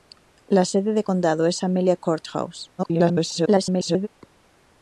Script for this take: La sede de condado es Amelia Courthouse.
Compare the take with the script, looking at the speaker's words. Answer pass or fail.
fail